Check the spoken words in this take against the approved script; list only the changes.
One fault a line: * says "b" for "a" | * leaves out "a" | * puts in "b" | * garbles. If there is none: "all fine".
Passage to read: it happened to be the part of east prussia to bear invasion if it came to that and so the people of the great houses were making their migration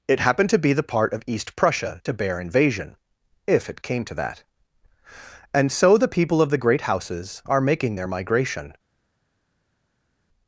* says "are" for "were"